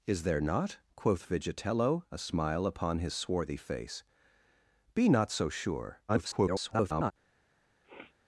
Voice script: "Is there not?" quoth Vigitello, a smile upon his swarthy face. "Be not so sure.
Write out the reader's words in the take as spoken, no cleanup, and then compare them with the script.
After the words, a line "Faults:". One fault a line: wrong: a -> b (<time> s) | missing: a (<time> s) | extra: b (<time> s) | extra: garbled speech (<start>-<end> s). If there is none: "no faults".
"Is there not?" quoth Vigitello, a smile upon his swarthy face. "Be not so sure. [garbled]
Faults:
extra: garbled speech (6.1-7.1 s)